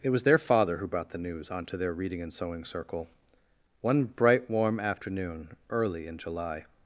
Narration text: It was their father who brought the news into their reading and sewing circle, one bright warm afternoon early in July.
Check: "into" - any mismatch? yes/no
yes